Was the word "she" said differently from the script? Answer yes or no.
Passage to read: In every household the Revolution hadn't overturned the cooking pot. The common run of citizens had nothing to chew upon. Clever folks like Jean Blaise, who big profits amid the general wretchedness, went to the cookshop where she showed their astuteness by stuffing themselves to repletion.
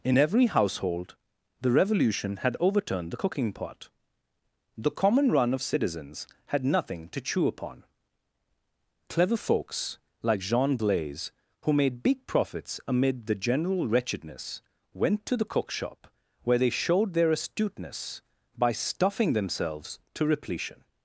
yes